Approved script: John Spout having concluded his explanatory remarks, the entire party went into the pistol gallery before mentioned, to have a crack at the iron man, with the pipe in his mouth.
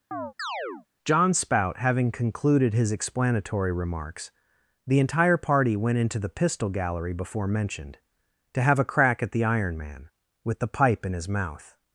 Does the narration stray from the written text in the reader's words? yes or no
no